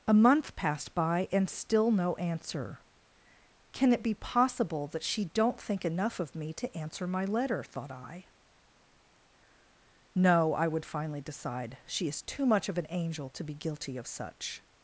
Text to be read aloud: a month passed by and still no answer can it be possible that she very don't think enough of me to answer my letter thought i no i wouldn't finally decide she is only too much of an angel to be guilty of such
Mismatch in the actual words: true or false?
true